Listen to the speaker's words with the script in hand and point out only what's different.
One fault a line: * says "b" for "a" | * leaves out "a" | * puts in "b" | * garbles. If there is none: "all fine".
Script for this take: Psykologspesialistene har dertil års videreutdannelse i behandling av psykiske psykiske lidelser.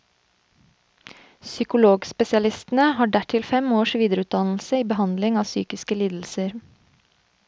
* puts in "fem"
* leaves out "psykiske"